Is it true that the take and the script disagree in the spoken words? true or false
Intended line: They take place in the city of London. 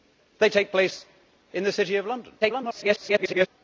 true